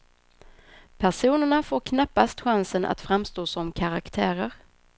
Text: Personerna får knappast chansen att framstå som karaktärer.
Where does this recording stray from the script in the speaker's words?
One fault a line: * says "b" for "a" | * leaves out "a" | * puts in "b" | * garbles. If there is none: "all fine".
all fine